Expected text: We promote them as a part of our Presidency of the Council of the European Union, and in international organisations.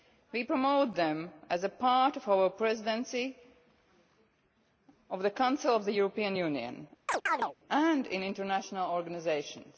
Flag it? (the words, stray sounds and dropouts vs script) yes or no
yes